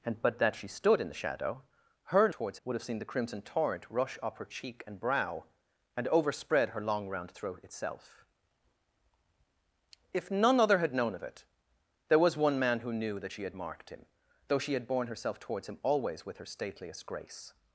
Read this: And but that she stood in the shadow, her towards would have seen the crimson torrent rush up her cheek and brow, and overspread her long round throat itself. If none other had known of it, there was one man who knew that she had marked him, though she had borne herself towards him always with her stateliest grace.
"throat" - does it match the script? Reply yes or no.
yes